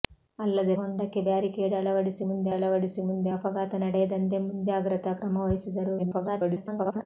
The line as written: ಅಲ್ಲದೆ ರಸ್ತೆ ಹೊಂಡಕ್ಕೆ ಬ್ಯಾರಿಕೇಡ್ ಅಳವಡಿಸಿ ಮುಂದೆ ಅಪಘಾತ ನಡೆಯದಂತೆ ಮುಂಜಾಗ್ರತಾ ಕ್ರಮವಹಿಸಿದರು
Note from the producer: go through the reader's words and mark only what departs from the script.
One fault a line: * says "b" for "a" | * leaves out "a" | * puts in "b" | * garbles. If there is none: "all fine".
* leaves out "ರಸ್ತೆ"
* puts in "ಅಳವಡಿಸಿ ಮುಂದೆ"
* garbles